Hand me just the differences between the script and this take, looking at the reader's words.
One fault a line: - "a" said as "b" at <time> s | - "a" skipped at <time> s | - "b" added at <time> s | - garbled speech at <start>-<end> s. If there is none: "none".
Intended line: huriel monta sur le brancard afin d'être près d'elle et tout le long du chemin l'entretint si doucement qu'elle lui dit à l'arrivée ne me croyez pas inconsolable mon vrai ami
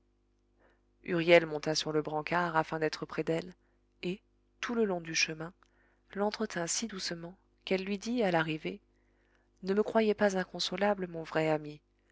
none